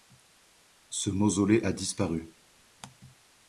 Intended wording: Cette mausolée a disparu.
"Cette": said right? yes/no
no